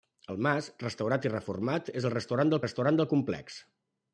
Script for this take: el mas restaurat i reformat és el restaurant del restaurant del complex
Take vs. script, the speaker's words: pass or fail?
pass